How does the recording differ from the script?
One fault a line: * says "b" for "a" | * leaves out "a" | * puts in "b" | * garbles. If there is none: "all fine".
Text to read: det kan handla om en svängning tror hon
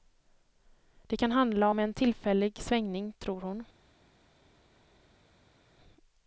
* puts in "tillfällig"